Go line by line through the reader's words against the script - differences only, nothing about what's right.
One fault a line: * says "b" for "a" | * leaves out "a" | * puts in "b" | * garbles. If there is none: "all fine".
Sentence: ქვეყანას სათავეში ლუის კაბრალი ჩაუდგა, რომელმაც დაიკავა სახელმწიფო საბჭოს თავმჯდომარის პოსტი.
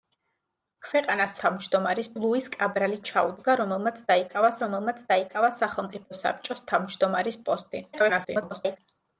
* says "თავმჯდომარის" for "სათავეში"
* puts in "რომელმაც დაიკავა"
* garbles